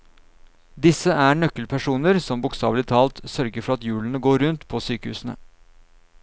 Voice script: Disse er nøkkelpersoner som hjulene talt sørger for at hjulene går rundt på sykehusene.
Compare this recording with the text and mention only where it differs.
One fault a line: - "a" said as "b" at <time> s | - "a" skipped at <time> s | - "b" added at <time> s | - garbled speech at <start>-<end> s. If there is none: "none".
- "hjulene" said as "bokstavelig" at 2.5 s